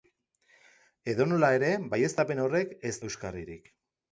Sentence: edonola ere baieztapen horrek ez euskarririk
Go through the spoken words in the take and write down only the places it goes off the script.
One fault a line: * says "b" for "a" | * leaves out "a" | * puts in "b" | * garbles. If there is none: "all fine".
all fine